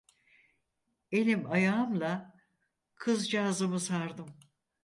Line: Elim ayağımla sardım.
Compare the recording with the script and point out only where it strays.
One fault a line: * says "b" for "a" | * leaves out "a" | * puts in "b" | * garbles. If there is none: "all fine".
* puts in "kızcağızımı"